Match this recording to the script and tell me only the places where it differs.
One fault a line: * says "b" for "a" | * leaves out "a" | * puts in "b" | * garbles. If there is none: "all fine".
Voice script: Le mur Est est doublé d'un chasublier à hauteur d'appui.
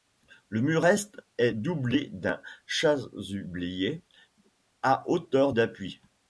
all fine